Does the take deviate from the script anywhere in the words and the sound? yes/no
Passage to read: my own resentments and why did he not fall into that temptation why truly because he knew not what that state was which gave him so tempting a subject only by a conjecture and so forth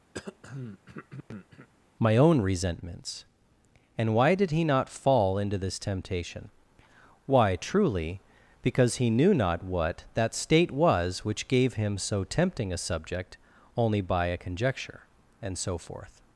yes